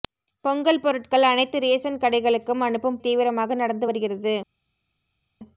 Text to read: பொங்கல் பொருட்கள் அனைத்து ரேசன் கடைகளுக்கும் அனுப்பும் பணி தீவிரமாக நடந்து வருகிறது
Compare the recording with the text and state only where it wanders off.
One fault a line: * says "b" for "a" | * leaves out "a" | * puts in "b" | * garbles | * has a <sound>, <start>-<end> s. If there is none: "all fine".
* leaves out "பணி"